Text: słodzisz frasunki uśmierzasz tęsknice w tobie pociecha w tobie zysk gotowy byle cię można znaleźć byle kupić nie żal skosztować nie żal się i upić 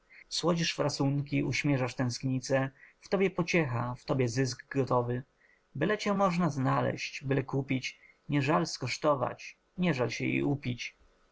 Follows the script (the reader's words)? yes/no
yes